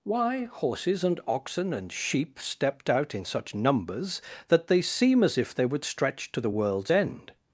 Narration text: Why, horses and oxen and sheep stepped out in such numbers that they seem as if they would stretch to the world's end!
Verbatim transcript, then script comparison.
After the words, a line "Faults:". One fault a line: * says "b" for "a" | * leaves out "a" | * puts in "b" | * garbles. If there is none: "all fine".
Why, horses and oxen and sheep stepped out in such numbers that they seem as if they would stretch to the world's end!
Faults:
all fine